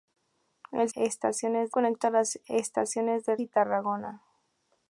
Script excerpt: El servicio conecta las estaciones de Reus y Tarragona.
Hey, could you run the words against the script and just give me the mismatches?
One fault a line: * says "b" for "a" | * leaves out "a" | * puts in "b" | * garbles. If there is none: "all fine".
* says "estaciones" for "servicio"
* leaves out "Reus"